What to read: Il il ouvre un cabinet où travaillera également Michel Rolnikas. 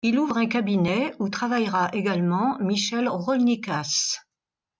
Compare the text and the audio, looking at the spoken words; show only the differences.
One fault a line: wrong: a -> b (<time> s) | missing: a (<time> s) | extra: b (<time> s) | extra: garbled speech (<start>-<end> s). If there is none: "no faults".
missing: il (0.2 s)